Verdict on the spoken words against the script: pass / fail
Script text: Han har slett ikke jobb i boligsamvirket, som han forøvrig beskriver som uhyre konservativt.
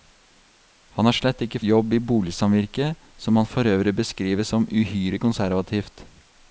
pass